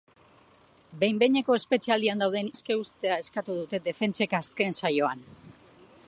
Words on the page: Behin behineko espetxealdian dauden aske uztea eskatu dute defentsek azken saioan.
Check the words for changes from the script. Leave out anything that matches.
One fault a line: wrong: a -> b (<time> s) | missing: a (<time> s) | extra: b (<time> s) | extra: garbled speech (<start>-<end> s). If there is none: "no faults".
no faults